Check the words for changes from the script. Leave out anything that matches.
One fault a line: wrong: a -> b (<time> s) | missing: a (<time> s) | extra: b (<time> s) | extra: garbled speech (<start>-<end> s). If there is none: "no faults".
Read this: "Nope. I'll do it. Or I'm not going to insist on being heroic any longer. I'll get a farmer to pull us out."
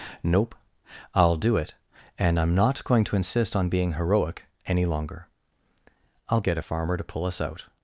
wrong: Or -> And (2.2 s)